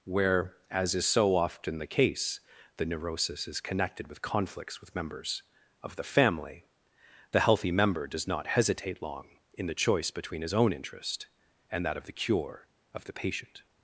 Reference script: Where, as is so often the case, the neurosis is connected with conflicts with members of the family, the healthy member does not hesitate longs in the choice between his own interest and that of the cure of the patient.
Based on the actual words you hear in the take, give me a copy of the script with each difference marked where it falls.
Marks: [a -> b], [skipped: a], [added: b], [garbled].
Where, as is so often the case, the neurosis is connected with conflicts with members of the family, the healthy member does not hesitate [longs -> long] in the choice between his own interest and that of the cure of the patient.